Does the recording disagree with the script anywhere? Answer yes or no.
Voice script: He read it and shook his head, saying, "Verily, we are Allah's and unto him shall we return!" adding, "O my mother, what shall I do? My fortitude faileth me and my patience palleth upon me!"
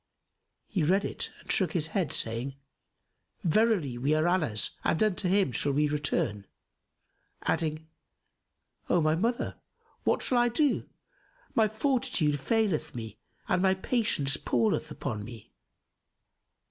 no